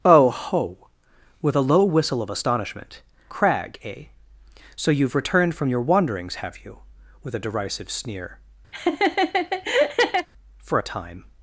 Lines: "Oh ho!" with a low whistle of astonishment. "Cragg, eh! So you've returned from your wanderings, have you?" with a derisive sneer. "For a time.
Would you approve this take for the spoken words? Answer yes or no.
yes